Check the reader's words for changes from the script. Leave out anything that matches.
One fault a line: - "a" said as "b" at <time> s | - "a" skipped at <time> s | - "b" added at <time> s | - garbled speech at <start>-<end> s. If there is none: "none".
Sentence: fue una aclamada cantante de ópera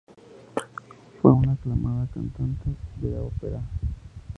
none